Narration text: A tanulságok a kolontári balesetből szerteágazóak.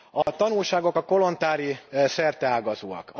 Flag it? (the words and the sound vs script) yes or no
yes